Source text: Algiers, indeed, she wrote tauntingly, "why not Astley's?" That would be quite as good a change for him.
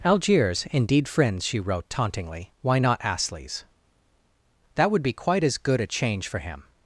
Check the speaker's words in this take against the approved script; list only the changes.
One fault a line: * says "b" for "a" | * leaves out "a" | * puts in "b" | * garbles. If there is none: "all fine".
* puts in "friends"